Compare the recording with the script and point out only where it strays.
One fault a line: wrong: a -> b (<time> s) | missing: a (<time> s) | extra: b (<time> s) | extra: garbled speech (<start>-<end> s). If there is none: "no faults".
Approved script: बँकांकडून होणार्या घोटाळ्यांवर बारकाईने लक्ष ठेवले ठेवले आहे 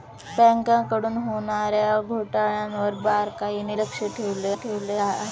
no faults